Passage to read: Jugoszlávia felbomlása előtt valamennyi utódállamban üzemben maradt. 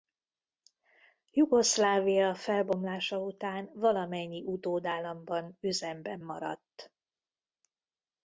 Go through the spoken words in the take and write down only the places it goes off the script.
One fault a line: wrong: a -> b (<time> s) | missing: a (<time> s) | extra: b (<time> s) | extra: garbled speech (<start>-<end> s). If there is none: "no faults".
wrong: előtt -> után (3.2 s)